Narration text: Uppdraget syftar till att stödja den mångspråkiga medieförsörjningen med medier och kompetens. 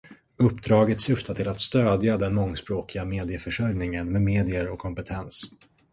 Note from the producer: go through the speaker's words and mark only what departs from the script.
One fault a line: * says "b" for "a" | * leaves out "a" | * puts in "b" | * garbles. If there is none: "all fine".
all fine